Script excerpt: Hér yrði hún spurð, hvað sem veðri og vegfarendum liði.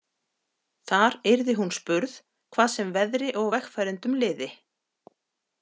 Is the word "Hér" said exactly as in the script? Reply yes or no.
no